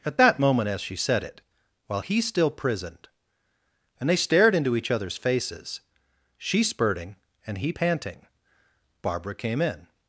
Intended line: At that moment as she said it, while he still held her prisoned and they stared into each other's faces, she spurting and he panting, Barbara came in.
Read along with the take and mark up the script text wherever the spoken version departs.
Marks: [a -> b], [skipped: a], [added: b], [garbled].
At that moment as she said it, while he still [skipped: held her] prisoned and they stared into each other's faces, she spurting and he panting, Barbara came in.